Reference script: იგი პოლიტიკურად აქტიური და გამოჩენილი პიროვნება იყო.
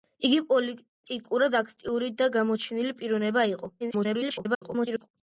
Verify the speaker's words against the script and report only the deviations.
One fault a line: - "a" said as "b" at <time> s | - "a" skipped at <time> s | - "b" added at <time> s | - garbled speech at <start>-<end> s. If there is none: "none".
- garbled speech at 3.8-5.1 s